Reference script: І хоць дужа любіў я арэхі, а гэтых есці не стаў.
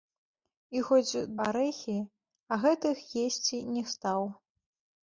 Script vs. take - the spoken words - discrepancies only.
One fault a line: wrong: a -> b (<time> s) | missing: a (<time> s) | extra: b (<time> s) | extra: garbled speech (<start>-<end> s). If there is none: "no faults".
missing: дужа любіў я (1.2 s)